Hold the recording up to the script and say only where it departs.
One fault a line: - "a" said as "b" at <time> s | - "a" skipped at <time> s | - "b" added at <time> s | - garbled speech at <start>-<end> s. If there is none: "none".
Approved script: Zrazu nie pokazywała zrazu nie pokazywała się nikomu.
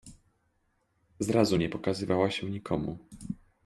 - "zrazu nie pokazywała" skipped at 2.3 s